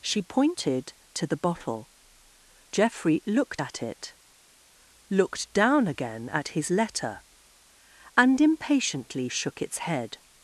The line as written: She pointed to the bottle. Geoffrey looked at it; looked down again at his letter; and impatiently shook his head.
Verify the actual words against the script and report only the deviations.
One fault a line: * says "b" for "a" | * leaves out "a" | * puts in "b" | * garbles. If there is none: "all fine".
* says "its" for "his"